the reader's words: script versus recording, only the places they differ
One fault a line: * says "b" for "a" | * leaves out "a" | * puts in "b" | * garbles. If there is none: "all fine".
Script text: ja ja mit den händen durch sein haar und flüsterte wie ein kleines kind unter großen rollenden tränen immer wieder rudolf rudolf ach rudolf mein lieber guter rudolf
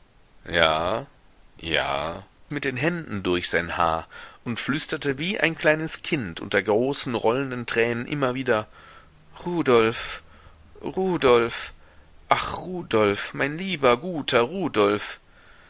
all fine